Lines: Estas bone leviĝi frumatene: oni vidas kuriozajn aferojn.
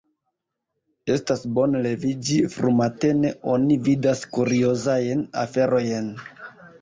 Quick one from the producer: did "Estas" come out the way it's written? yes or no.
yes